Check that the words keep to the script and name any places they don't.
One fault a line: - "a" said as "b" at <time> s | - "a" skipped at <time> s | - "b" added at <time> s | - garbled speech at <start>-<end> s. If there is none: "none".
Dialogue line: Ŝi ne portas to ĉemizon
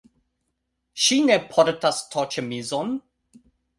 none